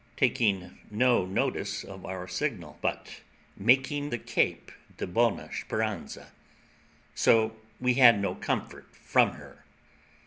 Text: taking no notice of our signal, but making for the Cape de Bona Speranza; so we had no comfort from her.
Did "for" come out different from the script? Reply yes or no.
yes